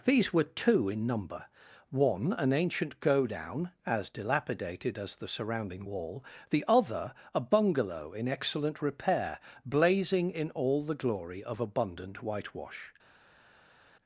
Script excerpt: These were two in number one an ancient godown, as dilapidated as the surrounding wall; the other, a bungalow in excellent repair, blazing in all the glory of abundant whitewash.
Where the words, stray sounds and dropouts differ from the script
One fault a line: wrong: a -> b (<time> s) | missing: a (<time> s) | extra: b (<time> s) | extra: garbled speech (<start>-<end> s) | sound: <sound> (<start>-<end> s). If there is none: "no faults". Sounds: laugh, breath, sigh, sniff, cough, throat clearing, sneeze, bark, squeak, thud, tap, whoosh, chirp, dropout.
no faults